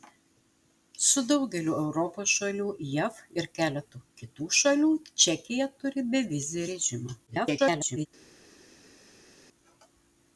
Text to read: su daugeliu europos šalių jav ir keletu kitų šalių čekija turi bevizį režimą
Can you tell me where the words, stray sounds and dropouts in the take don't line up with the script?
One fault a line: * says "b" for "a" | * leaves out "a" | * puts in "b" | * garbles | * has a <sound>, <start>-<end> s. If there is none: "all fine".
* garbles